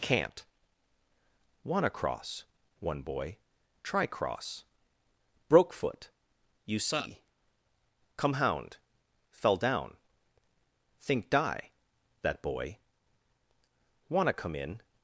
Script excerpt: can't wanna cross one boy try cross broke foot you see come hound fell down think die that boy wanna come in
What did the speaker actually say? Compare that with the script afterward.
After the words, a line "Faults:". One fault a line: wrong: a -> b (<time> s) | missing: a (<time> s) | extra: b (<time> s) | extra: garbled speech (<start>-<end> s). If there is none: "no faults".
can't wanna cross one boy try cross broke foot you see come hound fell down think die that boy wanna come in
Faults:
no faults